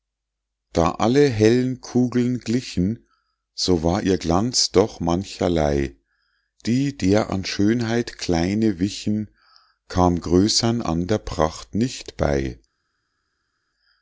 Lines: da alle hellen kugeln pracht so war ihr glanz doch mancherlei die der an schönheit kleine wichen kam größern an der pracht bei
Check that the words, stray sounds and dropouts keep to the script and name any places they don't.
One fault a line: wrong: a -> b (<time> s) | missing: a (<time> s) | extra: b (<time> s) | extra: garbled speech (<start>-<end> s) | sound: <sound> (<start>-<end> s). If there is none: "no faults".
wrong: pracht -> glichen (2.4 s)
extra: nicht (11.7 s)